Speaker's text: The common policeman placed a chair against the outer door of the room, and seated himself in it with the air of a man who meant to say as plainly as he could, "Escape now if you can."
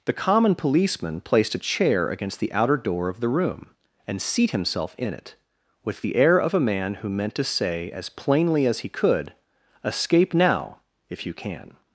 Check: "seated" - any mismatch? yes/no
yes